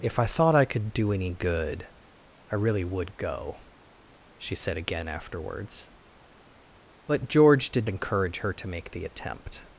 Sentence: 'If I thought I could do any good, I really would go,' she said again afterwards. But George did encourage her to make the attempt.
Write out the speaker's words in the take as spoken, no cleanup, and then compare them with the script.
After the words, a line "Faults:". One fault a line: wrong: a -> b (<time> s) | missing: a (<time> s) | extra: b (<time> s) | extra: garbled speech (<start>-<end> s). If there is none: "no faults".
'If I thought I could do any good, I really would go,' she said again afterwards. But George did encourage her to make the attempt.
Faults:
no faults